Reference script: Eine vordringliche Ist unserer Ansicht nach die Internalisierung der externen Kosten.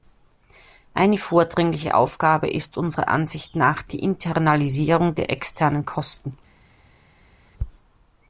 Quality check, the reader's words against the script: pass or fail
fail